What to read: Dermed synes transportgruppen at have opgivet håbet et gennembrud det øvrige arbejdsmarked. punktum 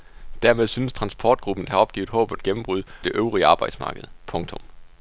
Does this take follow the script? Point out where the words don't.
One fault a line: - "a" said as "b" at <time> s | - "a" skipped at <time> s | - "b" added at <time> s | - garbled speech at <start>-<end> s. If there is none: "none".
none